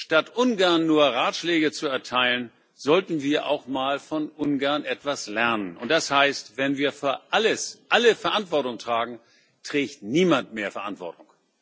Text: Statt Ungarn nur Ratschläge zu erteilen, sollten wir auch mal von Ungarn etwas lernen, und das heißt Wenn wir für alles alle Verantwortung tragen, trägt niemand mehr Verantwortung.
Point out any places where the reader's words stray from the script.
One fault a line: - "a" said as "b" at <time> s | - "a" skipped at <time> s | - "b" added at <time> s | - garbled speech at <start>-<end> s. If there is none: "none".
none